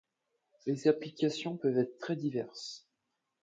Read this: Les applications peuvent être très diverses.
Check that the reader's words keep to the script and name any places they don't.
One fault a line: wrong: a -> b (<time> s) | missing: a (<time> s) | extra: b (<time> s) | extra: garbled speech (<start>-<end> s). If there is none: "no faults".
no faults